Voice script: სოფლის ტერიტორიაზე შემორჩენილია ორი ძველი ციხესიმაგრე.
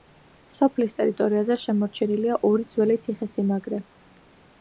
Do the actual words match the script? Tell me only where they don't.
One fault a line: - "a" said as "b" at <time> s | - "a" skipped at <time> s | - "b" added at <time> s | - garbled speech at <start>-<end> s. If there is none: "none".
none